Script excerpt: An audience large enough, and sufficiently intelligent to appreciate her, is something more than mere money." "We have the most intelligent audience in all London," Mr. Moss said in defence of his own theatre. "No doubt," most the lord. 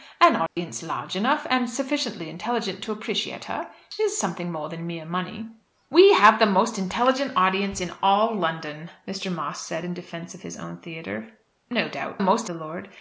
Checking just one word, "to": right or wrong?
right